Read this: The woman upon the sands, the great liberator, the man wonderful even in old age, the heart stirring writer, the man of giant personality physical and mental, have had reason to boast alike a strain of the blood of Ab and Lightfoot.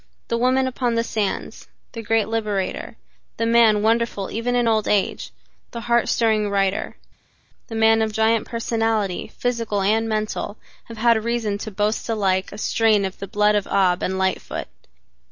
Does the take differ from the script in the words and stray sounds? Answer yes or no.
no